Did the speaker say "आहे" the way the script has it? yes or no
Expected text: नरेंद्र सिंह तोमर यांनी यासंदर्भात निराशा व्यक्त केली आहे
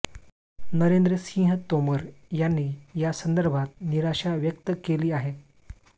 yes